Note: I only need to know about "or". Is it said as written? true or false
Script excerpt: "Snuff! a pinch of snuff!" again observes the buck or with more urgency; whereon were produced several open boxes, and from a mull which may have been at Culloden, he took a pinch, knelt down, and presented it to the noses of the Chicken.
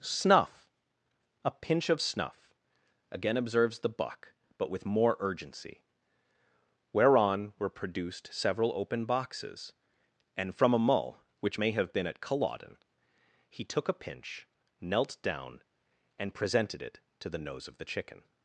false